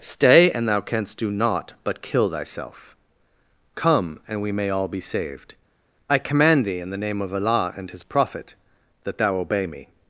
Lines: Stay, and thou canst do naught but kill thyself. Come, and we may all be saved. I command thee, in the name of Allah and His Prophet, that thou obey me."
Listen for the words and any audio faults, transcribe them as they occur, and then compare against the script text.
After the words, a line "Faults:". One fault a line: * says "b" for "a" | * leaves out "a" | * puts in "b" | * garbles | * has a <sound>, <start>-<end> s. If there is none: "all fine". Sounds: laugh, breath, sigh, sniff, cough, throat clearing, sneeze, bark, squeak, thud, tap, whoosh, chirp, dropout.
Stay, and thou canst do naught but kill thyself. Come, and we may all be saved. I command thee, in the name of Allah and His Prophet, that thou obey me."
Faults:
all fine